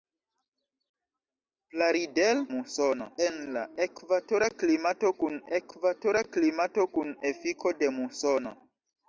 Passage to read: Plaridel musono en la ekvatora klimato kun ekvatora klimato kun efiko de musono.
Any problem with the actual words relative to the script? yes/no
no